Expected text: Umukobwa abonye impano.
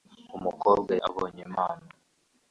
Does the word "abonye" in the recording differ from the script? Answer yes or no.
no